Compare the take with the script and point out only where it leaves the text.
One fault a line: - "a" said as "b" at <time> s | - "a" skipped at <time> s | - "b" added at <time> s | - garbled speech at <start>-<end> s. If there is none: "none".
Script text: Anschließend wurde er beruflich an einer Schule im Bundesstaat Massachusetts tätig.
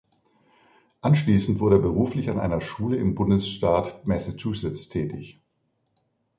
none